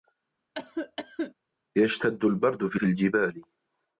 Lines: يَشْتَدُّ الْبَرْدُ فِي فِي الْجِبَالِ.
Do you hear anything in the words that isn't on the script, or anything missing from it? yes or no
no